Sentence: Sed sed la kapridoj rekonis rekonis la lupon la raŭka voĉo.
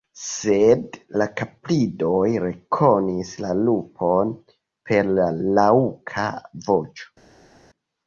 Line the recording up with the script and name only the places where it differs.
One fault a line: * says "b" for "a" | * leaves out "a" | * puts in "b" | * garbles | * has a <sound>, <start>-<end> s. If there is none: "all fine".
* leaves out "sed"
* leaves out "rekonis"
* puts in "per"